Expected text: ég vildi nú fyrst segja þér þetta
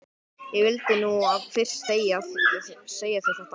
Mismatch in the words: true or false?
false